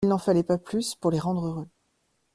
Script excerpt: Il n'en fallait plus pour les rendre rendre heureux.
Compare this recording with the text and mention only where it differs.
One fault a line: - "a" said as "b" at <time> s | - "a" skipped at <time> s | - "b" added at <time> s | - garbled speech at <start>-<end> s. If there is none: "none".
- "pas" added at 0.4 s
- "rendre" skipped at 1.4 s